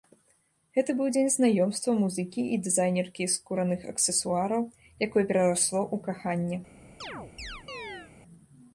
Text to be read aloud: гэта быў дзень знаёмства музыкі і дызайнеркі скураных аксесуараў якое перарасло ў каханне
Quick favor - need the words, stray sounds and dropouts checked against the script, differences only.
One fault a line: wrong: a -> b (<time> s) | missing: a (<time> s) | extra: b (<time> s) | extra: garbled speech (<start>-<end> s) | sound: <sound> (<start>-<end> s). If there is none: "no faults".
sound: chirp (7.0-8.1 s)